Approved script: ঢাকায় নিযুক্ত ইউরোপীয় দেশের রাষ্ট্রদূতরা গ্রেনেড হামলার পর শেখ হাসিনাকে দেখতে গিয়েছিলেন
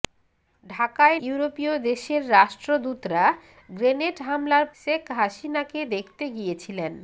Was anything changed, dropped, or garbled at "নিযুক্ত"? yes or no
yes